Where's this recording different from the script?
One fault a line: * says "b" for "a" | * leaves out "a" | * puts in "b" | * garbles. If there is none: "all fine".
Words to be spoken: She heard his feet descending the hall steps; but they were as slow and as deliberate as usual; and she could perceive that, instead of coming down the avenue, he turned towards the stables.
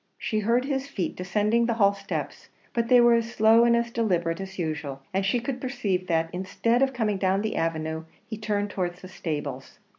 all fine